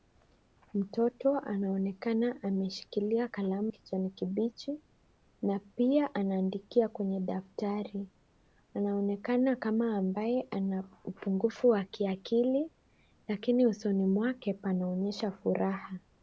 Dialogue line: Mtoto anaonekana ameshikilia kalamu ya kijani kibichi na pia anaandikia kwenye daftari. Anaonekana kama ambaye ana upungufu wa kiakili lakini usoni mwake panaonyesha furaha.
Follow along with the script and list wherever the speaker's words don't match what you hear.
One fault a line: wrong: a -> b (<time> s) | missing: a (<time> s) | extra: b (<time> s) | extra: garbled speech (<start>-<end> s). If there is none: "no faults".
missing: ya (3.7 s)